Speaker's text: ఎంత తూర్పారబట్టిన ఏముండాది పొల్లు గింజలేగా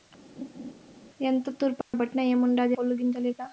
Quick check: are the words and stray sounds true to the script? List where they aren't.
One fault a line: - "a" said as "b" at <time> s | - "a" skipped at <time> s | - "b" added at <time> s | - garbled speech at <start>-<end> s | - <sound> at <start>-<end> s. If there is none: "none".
- laugh at 0.4-0.7 s
- dropout at 1.8-1.9 s